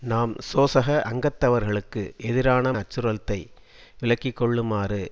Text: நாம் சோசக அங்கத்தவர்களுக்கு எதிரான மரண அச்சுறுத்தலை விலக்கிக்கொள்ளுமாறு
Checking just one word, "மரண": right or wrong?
wrong